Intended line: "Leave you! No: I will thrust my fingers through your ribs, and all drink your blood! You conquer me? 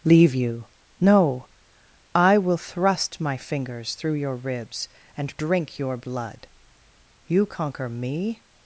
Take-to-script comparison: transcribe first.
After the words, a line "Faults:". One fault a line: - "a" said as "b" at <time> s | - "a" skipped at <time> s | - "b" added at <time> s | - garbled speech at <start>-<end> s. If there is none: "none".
"Leave you! No: I will thrust my fingers through your ribs, and drink your blood! You conquer me?
Faults:
- "all" skipped at 5.3 s